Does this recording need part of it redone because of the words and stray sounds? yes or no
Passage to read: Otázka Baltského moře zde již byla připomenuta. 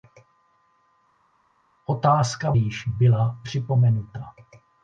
yes